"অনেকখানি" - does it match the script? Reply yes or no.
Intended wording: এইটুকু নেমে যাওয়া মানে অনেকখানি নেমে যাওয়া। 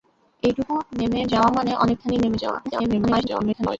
yes